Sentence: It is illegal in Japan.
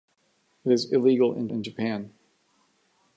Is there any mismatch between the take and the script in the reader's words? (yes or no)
yes